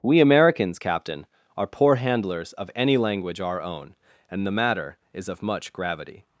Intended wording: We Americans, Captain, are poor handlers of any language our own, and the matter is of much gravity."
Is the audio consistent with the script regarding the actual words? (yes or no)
yes